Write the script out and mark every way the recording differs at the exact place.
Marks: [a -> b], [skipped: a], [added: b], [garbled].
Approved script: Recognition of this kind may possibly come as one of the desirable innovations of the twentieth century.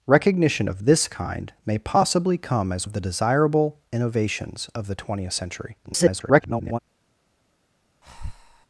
Recognition of this kind may possibly come as [skipped: one] of the desirable innovations of the twentieth century. [garbled]